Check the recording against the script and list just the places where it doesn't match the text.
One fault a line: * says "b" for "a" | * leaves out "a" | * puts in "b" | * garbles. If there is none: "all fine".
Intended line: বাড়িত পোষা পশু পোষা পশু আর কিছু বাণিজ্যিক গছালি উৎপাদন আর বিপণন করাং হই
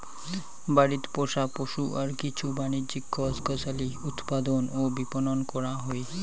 * leaves out "পোষা পশু"
* puts in "গছ"
* says "ও" for "আর"